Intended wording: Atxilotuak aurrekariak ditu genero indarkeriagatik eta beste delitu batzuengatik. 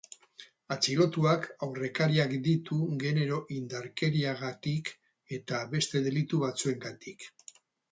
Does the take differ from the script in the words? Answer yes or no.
no